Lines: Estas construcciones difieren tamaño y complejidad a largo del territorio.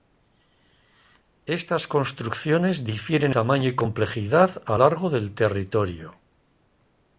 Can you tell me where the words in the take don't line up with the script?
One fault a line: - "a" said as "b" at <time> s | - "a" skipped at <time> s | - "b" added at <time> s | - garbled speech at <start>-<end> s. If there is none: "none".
none